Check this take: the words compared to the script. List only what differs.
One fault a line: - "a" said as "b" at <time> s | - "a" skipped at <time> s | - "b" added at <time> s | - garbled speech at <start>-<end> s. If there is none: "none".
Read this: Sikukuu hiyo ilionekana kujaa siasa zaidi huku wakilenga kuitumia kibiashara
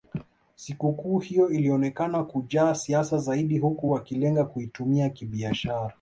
none